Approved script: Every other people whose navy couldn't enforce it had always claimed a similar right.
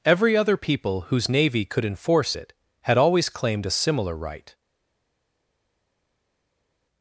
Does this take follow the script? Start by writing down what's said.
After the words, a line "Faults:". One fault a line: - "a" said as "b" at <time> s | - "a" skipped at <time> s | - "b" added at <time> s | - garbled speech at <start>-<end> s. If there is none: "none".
Every other people whose navy could enforce it had always claimed a similar right.
Faults:
- "couldn't" said as "could" at 1.7 s